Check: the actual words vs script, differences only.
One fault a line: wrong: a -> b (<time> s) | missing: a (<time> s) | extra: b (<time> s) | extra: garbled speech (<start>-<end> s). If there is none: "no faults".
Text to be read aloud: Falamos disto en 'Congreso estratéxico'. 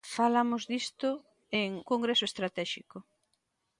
no faults